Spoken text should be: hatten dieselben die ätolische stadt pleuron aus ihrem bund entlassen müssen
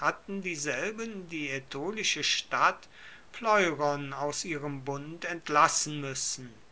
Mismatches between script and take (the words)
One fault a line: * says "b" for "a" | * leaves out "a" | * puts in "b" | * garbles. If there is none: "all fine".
all fine